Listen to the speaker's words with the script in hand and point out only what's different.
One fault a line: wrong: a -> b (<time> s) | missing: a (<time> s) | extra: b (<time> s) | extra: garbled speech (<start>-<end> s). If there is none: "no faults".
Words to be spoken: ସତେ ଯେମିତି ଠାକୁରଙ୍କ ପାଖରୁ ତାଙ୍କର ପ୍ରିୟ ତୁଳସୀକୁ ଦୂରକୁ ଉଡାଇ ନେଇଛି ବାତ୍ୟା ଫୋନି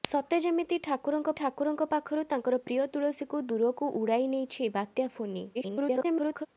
extra: ଠାକୁରଙ୍କ (1.4 s)
extra: garbled speech (5.5-6.5 s)